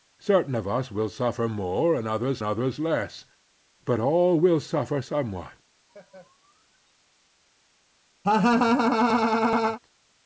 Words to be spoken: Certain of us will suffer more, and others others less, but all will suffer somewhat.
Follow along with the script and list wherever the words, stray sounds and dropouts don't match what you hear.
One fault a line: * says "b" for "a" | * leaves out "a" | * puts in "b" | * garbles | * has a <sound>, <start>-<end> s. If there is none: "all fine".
* has a laugh, 5.9-6.9 s
* has a laugh, 8.2-9.8 s